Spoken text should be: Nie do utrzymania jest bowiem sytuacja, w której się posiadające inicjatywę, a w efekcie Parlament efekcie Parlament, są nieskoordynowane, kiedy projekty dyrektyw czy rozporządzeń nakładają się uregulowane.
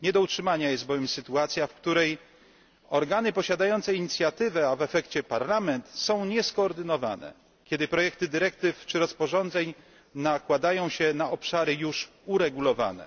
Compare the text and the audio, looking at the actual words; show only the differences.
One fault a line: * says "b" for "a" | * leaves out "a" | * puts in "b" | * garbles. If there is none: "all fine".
* says "organy" for "się"
* leaves out "efekcie Parlament"
* puts in "na obszary już"